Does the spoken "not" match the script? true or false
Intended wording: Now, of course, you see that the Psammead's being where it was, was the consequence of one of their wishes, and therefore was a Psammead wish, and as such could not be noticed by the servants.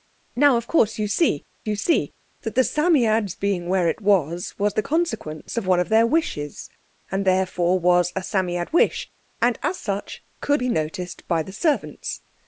false